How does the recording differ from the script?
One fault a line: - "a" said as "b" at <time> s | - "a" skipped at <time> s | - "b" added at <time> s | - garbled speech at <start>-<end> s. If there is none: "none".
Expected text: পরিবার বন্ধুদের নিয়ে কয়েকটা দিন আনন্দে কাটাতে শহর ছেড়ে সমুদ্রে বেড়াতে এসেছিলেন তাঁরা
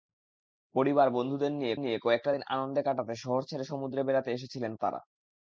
- "নিয়ে" added at 1.7 s